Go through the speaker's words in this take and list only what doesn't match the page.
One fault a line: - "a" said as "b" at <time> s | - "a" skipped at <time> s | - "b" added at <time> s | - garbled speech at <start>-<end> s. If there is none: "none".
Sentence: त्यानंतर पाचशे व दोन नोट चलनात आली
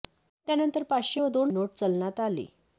none